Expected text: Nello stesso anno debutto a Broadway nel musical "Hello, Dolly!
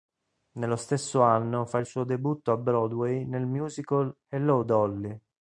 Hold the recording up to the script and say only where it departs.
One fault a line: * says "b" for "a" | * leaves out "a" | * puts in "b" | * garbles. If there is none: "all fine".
* puts in "fa il suo"